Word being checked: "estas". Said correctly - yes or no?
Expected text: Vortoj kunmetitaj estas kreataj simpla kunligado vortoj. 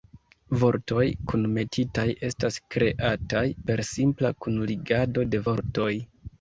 yes